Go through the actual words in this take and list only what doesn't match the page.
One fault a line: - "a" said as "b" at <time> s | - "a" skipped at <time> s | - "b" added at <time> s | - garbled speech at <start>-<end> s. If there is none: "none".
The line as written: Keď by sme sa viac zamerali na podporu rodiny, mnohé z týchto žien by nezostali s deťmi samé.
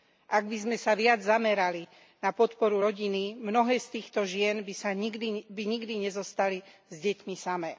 - "Keď" said as "Ak" at 0.3 s
- "nikdy" added at 5.7 s